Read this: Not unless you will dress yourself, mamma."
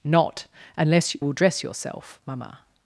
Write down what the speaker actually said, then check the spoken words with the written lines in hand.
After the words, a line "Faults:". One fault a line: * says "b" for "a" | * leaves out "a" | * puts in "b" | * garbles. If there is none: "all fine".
Not unless will dress yourself, mamma."
Faults:
* leaves out "you"